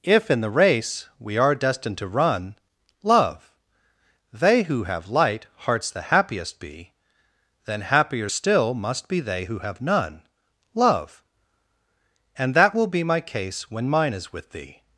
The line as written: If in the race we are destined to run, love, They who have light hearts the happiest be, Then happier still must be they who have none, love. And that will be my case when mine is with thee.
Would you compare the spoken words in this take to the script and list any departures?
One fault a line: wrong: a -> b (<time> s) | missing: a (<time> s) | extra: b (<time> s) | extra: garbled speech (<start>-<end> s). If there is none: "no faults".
no faults